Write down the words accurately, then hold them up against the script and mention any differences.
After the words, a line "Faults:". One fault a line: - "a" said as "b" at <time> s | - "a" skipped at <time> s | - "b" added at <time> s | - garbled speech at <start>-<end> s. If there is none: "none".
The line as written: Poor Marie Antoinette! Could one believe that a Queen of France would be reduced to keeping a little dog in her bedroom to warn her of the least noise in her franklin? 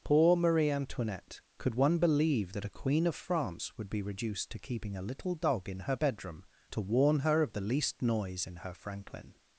Poor Marie Antoinette! Could one believe that a Queen of France would be reduced to keeping a little dog in her bedroom to warn her of the least noise in her franklin?
Faults:
none